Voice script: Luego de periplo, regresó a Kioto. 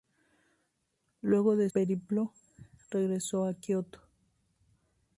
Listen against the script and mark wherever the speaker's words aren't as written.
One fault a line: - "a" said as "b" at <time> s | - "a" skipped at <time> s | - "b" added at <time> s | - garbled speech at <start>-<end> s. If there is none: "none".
none